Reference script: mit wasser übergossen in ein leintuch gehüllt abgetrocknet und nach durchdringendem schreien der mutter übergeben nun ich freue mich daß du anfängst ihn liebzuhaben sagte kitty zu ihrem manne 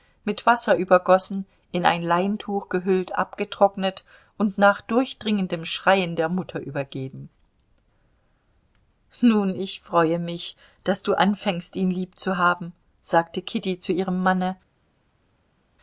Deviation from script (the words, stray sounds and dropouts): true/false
false